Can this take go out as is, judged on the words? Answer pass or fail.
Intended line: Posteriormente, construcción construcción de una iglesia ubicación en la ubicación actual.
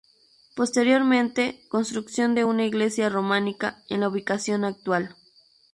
fail